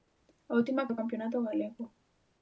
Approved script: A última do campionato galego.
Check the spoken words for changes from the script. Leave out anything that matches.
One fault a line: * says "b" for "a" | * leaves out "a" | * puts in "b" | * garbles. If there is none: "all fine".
all fine